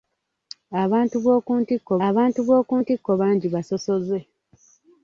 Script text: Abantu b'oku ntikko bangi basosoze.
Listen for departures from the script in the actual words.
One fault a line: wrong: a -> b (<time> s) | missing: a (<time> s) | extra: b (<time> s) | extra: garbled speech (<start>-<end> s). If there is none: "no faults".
extra: abantu b'oku ntikko (2.1 s)